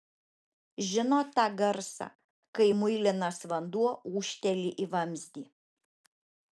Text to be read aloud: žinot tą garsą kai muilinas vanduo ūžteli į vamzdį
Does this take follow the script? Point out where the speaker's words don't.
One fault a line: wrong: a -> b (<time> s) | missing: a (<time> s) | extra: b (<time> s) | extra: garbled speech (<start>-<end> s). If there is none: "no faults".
no faults